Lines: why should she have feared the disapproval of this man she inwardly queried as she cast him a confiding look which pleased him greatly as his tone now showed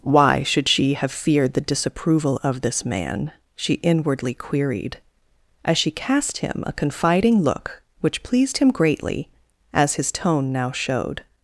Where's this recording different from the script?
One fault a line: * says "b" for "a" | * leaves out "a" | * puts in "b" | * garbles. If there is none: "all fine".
all fine